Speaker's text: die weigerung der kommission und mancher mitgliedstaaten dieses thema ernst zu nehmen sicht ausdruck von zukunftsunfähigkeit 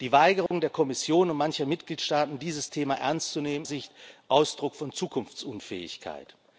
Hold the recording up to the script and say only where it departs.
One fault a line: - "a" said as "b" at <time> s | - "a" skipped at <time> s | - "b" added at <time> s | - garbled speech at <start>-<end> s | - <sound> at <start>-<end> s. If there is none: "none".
- dropout at 0.5-0.5 s